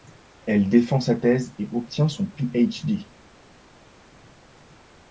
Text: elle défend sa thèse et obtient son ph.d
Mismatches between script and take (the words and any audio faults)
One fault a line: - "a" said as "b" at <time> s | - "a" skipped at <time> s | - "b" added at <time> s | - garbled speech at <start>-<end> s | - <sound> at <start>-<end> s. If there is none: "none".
none